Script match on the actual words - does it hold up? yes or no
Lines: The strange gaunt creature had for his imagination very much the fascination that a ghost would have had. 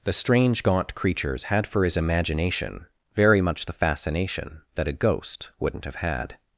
no